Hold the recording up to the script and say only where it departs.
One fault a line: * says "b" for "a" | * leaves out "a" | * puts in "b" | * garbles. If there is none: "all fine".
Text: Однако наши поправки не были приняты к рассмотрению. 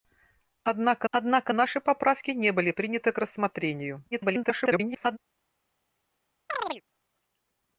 * puts in "однако"
* garbles